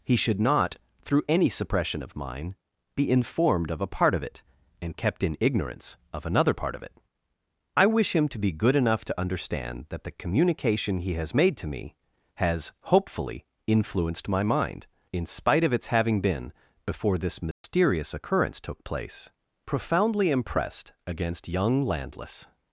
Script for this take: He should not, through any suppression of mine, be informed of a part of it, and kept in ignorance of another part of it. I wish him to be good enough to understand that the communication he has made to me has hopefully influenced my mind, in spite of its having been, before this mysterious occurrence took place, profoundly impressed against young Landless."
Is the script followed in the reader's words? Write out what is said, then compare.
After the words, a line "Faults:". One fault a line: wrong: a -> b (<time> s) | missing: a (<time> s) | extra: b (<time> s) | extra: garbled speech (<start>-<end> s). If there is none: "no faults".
He should not, through any suppression of mine, be informed of a part of it, and kept in ignorance of another part of it. I wish him to be good enough to understand that the communication he has made to me has hopefully influenced my mind, in spite of its having been, before this mysterious occurrence took place, profoundly impressed against young Landless."
Faults:
no faults